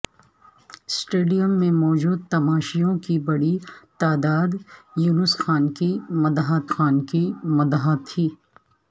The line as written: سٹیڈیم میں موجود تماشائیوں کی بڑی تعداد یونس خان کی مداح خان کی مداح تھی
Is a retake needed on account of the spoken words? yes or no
no